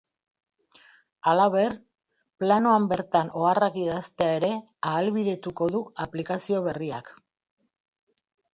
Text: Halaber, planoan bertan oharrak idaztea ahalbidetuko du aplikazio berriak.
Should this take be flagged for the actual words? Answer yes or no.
yes